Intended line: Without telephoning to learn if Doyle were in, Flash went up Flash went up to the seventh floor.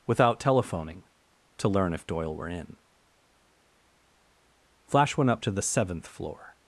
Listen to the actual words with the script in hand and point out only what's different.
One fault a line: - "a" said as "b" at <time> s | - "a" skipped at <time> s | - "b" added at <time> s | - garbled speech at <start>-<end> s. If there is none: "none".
- "Flash went up" skipped at 5.4 s